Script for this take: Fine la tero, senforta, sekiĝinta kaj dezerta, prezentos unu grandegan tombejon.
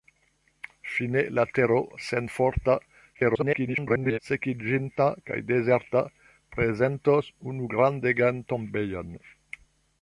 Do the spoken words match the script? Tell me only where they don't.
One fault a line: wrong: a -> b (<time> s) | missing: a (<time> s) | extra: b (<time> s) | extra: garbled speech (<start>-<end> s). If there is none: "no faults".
extra: garbled speech (3.1-4.2 s)